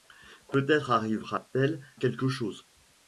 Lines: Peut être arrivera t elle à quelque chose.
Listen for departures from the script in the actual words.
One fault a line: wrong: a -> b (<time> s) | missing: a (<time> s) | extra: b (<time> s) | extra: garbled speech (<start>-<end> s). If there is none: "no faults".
missing: à (1.9 s)